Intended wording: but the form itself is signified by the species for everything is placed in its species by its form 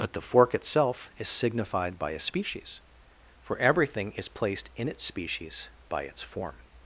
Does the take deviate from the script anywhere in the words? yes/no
yes